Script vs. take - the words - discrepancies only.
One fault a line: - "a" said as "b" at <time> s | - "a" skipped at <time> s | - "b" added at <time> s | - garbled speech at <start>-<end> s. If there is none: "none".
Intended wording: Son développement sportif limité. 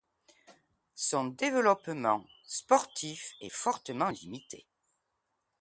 - "est fortement" added at 3.4 s